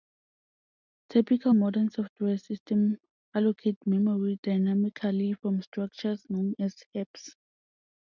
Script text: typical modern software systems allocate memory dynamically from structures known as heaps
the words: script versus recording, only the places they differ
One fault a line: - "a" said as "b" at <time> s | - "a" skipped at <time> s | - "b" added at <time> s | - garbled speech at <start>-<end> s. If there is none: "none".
none